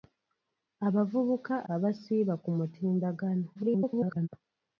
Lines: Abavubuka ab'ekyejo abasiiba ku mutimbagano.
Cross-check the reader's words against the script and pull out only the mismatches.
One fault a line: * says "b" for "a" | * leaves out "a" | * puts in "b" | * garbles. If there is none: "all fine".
* leaves out "ab'ekyejo"
* garbles